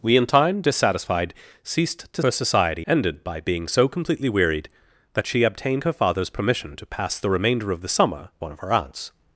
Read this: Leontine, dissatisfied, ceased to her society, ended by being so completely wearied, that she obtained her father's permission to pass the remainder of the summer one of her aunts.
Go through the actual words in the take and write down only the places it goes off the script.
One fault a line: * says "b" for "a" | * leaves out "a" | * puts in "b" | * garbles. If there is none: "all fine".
all fine